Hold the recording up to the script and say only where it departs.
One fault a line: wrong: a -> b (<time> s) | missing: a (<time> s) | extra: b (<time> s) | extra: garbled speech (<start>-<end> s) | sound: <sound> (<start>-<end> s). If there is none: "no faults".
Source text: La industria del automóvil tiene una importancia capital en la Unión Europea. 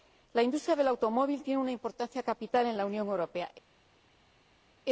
no faults